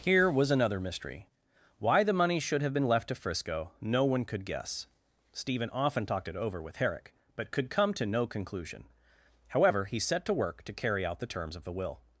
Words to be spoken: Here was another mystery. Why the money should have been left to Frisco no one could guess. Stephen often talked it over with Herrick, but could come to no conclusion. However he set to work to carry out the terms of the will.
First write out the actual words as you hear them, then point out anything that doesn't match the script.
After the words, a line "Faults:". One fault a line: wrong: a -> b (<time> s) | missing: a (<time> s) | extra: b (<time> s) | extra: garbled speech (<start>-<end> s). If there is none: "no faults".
Here was another mystery. Why the money should have been left to Frisco no one could guess. Stephen often talked it over with Herrick, but could come to no conclusion. However he set to work to carry out the terms of the will.
Faults:
no faults